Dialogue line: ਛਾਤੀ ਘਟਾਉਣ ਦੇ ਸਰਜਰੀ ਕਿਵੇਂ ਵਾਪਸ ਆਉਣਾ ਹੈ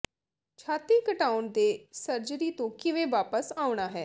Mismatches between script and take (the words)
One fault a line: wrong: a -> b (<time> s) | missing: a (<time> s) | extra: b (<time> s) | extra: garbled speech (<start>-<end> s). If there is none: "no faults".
extra: ਤੋਂ (2.5 s)